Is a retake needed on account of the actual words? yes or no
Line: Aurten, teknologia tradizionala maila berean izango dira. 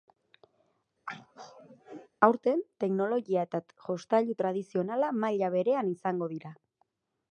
yes